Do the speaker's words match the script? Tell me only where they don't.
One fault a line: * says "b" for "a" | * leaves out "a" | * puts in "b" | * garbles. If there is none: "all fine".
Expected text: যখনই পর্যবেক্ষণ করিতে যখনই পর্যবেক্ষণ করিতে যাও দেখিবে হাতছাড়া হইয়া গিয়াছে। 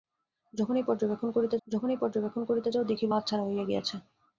all fine